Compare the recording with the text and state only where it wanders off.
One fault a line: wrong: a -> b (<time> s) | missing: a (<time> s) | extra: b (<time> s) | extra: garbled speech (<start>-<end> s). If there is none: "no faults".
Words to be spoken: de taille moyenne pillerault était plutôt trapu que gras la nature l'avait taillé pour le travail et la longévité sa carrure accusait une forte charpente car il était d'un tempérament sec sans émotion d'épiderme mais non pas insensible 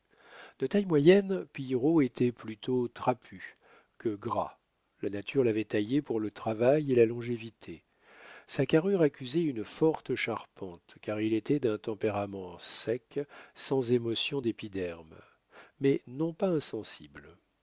no faults